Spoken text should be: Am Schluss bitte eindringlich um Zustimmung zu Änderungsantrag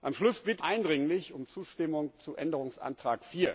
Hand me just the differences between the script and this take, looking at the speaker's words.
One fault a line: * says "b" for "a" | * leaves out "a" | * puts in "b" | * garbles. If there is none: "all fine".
all fine